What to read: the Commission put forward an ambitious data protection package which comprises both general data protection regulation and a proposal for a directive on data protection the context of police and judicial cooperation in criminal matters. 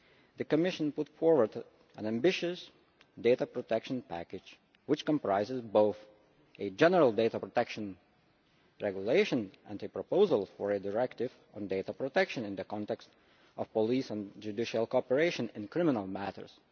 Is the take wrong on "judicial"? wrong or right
right